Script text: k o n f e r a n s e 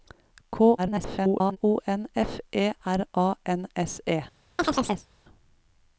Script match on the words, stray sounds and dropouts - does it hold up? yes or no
no